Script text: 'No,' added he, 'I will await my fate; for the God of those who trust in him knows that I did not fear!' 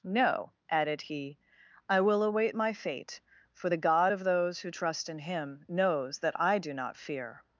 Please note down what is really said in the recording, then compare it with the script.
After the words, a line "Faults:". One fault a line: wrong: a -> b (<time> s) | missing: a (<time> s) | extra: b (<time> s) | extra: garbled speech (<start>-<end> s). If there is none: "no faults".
'No,' added he, 'I will await my fate; for the God of those who trust in him knows that I do not fear!'
Faults:
wrong: did -> do (6.6 s)